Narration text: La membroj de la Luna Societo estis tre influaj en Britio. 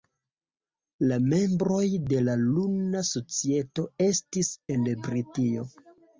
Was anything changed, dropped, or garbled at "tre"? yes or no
yes